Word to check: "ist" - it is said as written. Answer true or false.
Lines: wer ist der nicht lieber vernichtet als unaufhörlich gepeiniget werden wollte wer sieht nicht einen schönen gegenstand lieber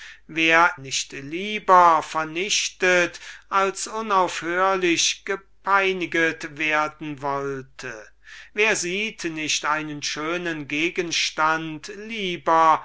false